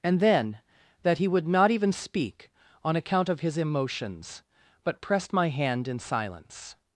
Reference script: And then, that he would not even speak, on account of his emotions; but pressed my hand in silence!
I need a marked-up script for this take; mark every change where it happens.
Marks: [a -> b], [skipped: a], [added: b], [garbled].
And then, that he would not even speak, on account of his emotions; but pressed my hand in silence!